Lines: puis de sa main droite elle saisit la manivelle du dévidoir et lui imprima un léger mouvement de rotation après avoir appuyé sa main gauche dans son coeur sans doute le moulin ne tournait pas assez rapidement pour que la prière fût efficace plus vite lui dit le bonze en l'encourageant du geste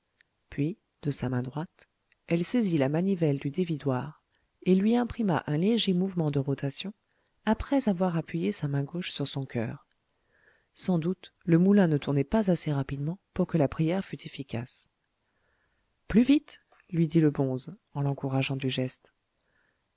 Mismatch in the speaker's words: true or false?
true